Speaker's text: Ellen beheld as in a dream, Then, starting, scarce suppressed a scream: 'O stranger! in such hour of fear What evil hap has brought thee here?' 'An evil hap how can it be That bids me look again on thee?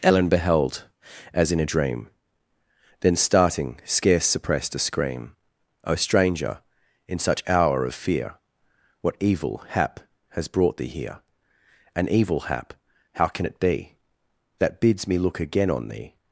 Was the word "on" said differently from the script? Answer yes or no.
no